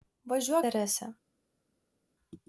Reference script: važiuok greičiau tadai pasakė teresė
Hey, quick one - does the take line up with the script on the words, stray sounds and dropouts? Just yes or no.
no